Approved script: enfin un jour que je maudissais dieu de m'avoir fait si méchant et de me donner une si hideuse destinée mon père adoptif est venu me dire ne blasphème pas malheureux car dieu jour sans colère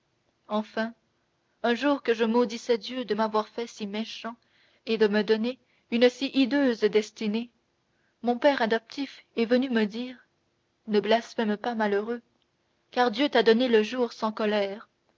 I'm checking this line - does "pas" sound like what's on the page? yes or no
yes